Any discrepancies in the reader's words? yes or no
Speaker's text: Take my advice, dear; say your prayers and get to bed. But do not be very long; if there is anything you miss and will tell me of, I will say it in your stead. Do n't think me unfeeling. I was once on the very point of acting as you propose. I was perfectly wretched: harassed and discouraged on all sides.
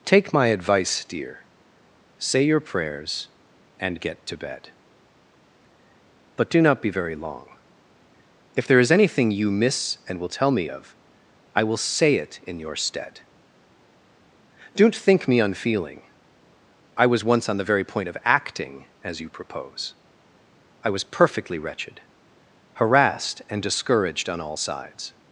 no